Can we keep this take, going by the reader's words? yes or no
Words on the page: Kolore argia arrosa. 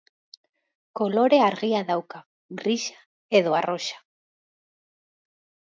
no